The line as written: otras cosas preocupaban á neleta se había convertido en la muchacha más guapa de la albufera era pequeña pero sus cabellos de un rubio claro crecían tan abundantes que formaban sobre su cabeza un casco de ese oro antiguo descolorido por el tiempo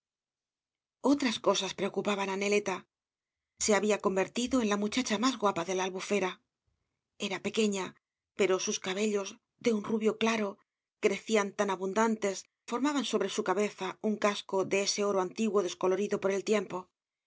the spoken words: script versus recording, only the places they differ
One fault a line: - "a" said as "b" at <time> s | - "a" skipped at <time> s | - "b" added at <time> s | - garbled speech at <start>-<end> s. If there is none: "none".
- "que" skipped at 12.4 s